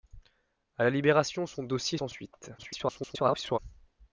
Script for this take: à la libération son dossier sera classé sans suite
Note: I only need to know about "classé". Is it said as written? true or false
false